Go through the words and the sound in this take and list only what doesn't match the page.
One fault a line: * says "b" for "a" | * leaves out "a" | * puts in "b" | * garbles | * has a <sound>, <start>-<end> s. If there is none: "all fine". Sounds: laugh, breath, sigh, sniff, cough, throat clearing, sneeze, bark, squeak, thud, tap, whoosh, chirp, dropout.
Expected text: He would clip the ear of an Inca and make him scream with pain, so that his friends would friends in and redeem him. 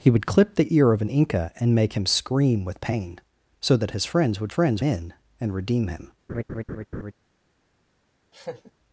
* has a laugh, 6.3-7.1 s
* has a laugh, 8.3-8.7 s